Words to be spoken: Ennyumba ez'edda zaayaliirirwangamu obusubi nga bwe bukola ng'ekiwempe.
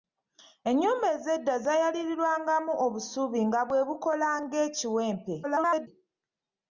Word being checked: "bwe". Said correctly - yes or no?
yes